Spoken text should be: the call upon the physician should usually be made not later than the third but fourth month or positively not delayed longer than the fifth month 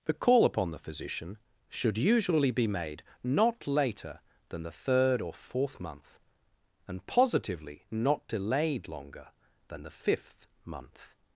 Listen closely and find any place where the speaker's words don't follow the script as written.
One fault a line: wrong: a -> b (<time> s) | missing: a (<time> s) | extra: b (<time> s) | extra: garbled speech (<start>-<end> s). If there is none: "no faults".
wrong: but -> or (5.2 s)
wrong: or -> and (6.9 s)